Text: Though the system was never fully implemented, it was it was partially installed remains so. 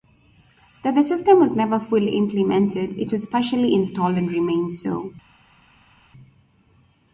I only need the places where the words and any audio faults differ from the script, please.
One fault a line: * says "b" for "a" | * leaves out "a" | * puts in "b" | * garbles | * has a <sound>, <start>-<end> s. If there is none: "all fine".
* leaves out "it was"
* puts in "and"